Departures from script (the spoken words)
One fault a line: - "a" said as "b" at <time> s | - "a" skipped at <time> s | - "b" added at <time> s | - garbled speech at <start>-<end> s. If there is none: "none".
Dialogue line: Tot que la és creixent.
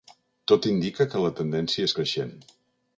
- "indica" added at 0.7 s
- "tendència" added at 1.4 s